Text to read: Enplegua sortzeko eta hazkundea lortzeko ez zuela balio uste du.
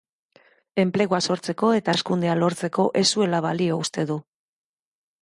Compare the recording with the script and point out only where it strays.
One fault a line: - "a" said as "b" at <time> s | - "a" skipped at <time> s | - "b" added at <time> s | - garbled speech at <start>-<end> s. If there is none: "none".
none